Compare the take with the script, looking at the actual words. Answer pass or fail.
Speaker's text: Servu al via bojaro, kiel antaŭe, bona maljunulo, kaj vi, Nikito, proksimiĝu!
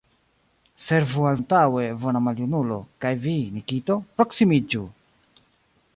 fail